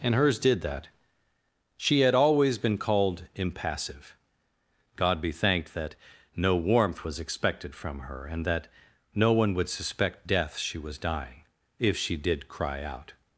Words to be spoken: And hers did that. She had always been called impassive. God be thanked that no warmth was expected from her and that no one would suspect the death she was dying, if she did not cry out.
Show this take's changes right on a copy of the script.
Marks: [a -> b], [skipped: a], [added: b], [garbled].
And hers did that. She had always been called impassive. God be thanked that no warmth was expected from her and that no one would suspect [skipped: the] death she was dying, if she did [skipped: not] cry out.